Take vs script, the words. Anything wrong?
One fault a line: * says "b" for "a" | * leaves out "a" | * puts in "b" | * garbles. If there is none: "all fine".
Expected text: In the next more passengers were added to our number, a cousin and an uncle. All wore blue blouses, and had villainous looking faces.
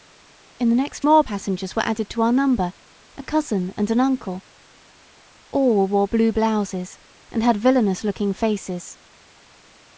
all fine